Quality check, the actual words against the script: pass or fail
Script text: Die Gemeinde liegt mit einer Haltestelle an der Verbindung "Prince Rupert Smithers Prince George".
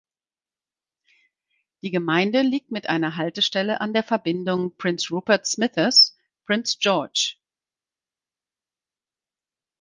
pass